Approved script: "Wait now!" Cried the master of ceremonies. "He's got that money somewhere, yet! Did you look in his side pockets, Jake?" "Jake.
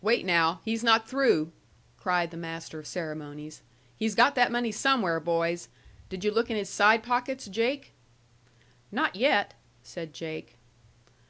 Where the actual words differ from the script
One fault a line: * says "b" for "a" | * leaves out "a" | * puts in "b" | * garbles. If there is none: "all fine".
* puts in "He's not through"
* says "boys" for "yet"
* puts in "Not yet said"